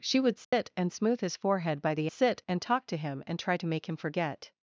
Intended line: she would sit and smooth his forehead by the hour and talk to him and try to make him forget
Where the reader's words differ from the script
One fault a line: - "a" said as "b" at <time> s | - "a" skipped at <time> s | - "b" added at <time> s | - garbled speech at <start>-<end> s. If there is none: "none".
- "hour" said as "sit" at 2.1 s